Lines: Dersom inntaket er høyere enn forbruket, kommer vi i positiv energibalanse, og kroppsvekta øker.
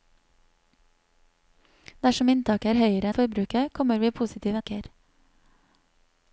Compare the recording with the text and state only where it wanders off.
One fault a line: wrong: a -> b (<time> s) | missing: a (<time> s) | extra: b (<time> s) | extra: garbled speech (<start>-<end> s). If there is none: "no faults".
missing: enn (3.1 s)
missing: energibalanse og kroppsvekta (4.6 s)